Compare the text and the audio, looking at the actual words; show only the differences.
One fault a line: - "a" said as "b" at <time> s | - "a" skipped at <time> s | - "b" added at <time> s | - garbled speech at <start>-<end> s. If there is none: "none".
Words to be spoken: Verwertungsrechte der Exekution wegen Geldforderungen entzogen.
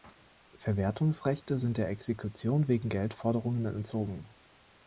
- "sind" added at 1.6 s